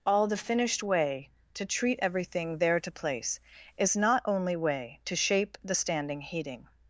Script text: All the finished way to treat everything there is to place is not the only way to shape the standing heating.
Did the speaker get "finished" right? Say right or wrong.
right